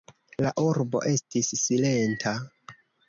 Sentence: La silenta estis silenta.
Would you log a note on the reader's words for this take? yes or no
yes